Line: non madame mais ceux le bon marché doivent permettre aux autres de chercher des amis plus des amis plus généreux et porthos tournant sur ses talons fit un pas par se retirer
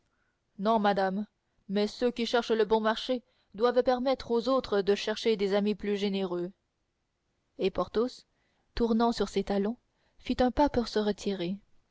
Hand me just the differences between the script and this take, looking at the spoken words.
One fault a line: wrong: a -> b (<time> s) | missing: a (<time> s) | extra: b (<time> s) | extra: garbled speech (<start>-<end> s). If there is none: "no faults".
extra: qui cherchent (2.1 s)
missing: des amis plus (6.0 s)
wrong: par -> pour (10.7 s)